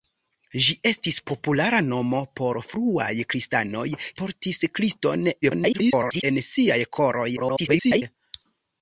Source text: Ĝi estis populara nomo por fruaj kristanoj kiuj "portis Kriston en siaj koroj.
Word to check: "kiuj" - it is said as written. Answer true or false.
false